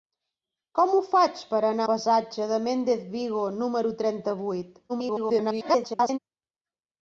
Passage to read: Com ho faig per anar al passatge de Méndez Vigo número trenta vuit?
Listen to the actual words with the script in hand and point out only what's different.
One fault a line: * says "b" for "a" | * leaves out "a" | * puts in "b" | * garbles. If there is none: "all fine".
* leaves out "al"
* garbles